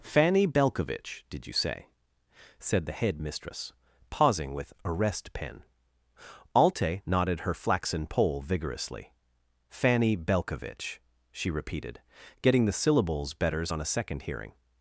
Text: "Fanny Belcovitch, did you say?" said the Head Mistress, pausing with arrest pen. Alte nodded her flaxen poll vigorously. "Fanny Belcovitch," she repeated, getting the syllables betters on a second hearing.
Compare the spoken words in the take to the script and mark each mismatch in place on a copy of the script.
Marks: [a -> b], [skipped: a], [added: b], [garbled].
"Fanny Belcovitch, did you say?" said the Head Mistress, pausing with arrest pen. Alte nodded her flaxen poll vigorously. "Fanny Belcovitch," she repeated, getting the syllables betters on a second hearing.